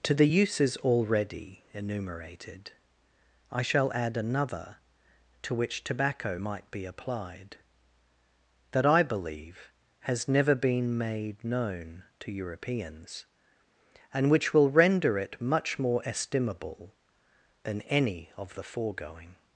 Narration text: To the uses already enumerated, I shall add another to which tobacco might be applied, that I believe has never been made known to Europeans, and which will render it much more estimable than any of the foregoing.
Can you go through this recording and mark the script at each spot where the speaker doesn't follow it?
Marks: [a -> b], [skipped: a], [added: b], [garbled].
To the uses already enumerated, I shall add another to which tobacco might be applied, that I believe has never been made known to Europeans, and which will render it much more estimable than any of the foregoing.